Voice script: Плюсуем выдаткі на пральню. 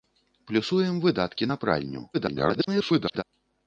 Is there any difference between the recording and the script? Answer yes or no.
yes